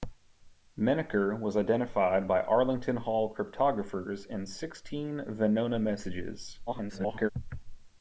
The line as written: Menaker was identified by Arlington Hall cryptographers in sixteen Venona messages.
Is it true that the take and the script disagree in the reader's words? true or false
true